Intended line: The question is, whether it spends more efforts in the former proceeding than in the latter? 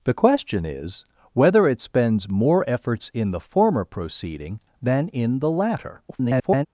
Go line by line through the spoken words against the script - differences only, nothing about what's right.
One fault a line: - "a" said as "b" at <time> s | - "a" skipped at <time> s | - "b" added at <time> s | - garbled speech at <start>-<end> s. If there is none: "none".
- garbled speech at 6.1-6.7 s